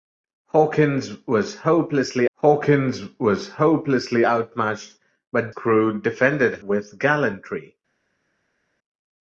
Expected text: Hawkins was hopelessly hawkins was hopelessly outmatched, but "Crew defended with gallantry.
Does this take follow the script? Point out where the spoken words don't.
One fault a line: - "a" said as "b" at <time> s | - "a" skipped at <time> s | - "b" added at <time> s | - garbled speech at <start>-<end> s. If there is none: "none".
none